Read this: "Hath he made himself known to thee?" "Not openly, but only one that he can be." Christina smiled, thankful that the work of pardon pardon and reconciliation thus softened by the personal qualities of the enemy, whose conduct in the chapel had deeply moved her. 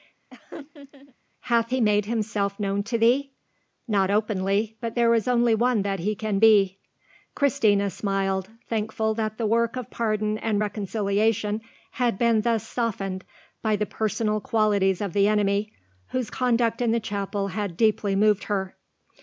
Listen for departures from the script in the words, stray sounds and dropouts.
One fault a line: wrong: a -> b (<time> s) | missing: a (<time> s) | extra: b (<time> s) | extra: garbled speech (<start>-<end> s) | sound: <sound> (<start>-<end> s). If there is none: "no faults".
sound: laugh (0.3-1.2 s)
extra: there is (5.0 s)
missing: pardon (10.4 s)
extra: had been (11.9 s)